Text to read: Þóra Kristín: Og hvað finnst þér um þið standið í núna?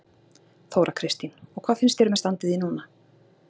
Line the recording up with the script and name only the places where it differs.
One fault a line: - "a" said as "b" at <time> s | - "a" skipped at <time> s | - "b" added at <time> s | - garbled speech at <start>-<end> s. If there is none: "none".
none